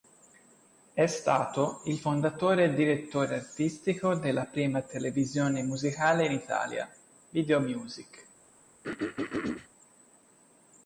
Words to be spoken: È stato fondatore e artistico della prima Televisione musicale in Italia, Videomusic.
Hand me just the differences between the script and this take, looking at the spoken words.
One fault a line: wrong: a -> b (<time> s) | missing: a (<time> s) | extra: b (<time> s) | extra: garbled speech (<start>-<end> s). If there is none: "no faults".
extra: il (1.9 s)
extra: direttore (2.7 s)